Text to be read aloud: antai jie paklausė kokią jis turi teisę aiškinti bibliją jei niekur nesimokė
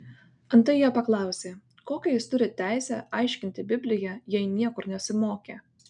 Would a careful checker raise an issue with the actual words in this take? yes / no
no